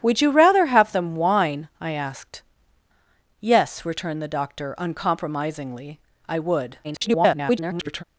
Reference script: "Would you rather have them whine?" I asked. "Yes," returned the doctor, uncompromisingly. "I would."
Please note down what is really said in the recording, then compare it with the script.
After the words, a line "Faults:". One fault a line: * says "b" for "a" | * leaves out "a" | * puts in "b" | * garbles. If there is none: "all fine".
"Would you rather have them whine?" I asked. "Yes," returned the doctor, uncompromisingly. "I would." [garbled]
Faults:
* garbles